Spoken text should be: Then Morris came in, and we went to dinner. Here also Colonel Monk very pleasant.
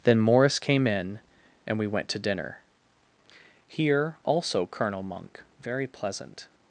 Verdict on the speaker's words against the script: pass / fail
pass